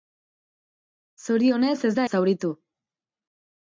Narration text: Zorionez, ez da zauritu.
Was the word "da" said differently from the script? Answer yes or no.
no